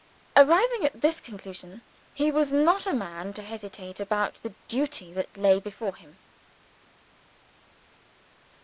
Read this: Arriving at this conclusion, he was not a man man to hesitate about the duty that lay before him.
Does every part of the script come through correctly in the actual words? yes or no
no